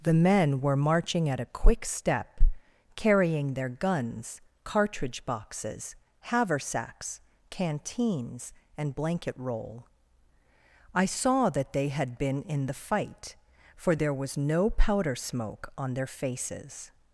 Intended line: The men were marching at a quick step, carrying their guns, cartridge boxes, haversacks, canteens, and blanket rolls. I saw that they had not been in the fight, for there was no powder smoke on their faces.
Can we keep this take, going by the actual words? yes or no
no